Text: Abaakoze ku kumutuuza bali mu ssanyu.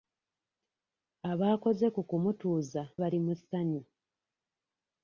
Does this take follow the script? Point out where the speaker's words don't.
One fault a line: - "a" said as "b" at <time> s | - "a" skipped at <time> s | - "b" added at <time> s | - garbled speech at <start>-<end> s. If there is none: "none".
none